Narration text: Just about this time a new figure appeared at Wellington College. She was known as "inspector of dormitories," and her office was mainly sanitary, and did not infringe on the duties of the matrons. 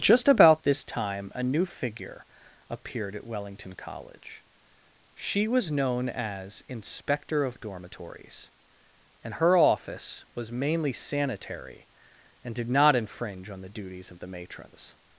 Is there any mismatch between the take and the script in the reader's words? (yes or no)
no